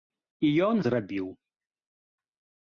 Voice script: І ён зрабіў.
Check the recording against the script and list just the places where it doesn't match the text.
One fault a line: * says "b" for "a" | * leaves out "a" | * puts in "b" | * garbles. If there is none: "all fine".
all fine